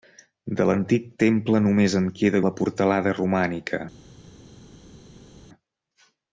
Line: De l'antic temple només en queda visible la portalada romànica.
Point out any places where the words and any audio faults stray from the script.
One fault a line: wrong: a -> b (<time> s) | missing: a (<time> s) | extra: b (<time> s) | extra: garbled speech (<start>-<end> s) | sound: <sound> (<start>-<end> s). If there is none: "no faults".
missing: visible (2.4 s)